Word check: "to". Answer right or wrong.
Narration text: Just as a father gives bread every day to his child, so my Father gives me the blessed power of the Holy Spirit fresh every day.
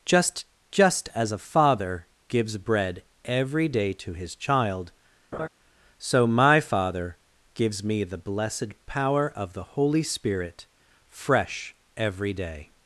right